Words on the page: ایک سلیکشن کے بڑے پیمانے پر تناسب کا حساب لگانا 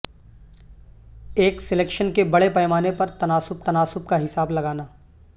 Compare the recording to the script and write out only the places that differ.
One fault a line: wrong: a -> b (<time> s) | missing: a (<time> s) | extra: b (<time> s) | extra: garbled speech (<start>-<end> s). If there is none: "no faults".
extra: تناسب (3.6 s)